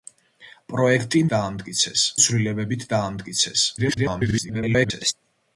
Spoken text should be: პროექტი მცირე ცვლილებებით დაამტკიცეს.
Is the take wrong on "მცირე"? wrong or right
wrong